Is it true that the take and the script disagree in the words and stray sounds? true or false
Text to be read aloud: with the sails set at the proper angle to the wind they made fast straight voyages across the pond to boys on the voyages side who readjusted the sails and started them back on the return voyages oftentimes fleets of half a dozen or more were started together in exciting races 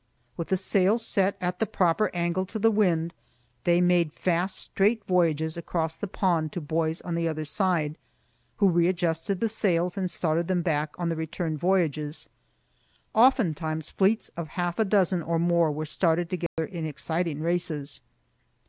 true